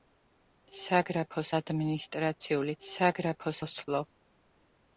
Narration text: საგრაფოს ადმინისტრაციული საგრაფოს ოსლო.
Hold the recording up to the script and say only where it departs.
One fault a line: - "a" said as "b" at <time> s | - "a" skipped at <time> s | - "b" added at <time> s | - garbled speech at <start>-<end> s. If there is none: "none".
none